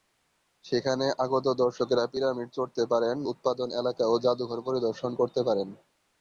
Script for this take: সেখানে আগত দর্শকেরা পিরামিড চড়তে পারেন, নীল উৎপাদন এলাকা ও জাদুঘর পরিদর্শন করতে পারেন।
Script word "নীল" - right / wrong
wrong